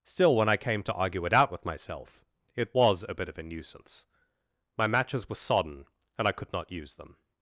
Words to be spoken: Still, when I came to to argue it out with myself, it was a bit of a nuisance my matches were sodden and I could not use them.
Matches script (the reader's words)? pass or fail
fail